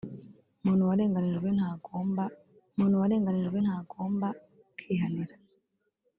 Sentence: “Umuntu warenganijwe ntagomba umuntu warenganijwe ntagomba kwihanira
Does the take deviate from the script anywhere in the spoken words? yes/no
no